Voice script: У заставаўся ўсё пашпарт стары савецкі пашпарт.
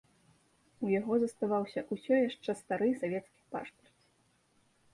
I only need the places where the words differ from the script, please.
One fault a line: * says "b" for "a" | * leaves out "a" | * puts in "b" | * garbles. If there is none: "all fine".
* puts in "яго"
* says "яшчэ" for "пашпарт"